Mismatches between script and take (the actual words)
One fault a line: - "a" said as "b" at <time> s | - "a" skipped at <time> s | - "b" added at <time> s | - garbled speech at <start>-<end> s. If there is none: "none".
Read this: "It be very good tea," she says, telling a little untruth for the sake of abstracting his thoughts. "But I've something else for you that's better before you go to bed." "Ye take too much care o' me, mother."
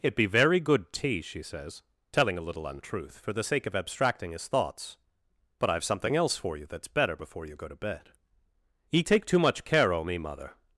none